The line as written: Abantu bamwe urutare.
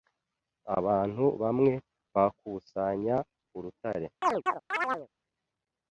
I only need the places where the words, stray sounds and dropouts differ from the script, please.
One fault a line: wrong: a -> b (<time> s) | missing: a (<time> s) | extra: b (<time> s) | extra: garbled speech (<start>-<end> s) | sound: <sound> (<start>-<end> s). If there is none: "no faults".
extra: bakusanya (2.1 s)
sound: chirp (4.2-5.1 s)